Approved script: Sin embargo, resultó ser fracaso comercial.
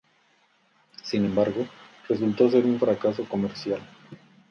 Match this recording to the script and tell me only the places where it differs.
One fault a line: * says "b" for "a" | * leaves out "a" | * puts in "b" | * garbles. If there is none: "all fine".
* puts in "un"